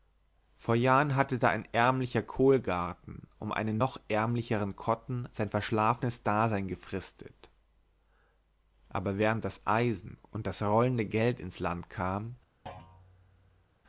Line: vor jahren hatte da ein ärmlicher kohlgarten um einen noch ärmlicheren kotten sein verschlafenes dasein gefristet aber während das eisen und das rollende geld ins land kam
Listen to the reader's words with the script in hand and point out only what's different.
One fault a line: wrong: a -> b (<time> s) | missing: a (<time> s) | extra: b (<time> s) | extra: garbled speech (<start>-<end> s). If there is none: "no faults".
no faults